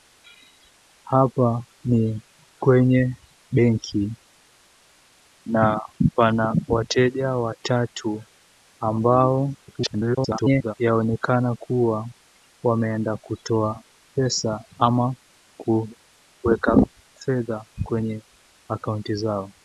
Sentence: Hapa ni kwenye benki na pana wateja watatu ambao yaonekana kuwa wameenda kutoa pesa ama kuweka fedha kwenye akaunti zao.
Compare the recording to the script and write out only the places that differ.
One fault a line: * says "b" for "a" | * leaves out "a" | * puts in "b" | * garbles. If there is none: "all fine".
* garbles